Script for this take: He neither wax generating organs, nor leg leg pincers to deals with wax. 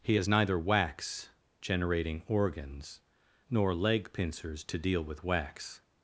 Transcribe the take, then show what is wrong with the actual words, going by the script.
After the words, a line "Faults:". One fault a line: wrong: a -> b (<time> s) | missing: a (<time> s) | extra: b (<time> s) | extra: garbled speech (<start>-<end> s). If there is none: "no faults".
He has neither wax generating organs, nor leg pincers to deal with wax.
Faults:
extra: has (0.1 s)
missing: leg (4.1 s)
wrong: deals -> deal (4.8 s)